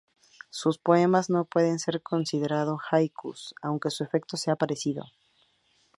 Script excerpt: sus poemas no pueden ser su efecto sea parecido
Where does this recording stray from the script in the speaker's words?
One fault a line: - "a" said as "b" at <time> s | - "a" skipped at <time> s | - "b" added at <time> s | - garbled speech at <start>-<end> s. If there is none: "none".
- "considerados haikus aunque" added at 2.0 s